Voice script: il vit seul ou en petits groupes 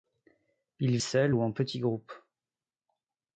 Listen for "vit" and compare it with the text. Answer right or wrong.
wrong